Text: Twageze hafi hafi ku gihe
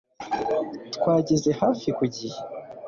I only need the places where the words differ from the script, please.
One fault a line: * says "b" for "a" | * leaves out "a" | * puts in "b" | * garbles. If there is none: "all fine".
* leaves out "hafi"